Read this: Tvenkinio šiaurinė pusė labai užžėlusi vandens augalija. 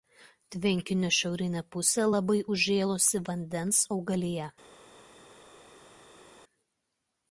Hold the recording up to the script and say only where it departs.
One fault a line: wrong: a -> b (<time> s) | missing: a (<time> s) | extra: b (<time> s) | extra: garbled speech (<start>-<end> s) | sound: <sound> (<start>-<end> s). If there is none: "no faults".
no faults